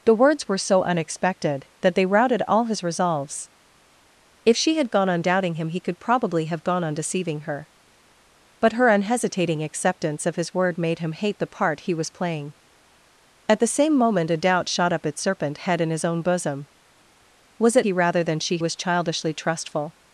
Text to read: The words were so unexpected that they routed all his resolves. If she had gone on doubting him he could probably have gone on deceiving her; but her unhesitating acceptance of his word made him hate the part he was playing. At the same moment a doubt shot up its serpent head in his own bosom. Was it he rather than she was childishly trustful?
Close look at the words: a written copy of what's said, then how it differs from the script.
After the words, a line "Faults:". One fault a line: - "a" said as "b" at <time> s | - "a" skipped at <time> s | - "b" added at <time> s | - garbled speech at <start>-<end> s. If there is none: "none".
The words were so unexpected that they routed all his resolves. If she had gone on doubting him he could probably have gone on deceiving her; but her unhesitating acceptance of his word made him hate the part he was playing. At the same moment a doubt shot up its serpent head in his own bosom. Was it he rather than she was childishly trustful?
Faults:
none